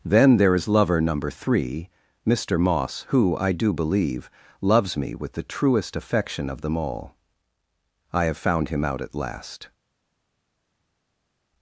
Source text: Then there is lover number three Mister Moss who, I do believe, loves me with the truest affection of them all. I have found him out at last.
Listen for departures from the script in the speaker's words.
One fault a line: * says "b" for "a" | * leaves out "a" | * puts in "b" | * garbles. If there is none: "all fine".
all fine